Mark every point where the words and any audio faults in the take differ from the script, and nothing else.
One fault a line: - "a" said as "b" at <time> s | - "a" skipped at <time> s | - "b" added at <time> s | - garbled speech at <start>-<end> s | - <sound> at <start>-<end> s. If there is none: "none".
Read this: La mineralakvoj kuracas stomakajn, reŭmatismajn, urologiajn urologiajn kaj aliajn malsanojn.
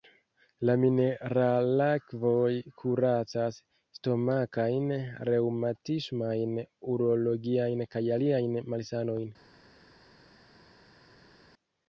- "urologiajn" skipped at 7.8 s